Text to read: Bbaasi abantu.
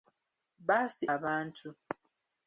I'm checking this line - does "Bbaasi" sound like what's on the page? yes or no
yes